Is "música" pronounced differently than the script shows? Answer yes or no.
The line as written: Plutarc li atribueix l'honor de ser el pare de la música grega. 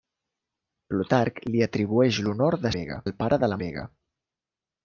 yes